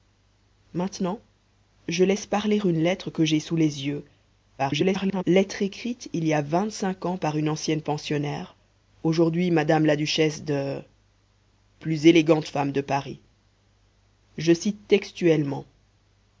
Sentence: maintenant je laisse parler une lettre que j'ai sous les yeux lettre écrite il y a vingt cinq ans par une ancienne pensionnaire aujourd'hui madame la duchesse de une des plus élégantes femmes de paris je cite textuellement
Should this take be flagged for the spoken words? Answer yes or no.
yes